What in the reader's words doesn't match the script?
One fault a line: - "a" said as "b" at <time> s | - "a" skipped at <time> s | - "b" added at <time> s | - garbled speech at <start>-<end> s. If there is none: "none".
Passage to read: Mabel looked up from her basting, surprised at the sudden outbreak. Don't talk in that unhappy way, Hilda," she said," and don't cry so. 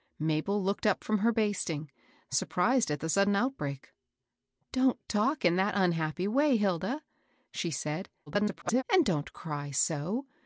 - garbled speech at 8.3-8.8 s